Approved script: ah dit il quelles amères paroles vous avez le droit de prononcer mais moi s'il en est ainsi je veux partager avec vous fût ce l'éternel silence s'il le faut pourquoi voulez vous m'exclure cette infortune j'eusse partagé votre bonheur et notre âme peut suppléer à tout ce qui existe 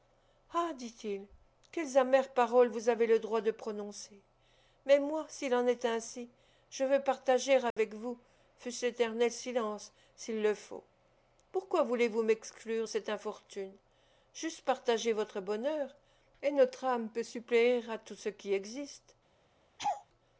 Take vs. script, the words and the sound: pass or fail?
fail